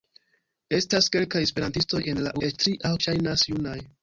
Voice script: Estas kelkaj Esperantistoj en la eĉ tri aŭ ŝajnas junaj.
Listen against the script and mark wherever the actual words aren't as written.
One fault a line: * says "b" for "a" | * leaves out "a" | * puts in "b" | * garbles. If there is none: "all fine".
all fine